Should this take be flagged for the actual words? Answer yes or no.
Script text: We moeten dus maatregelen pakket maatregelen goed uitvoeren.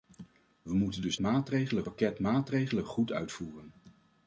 no